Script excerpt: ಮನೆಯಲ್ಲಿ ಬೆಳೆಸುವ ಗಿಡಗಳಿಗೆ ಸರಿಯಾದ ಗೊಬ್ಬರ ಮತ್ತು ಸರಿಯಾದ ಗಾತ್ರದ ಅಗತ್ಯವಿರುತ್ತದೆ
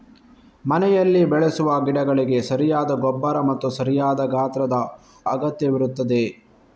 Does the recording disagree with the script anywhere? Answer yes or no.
no